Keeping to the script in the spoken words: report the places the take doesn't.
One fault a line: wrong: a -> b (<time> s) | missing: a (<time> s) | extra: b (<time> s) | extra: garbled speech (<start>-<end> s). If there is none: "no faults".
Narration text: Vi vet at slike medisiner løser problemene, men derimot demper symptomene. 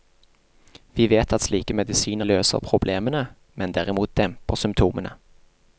no faults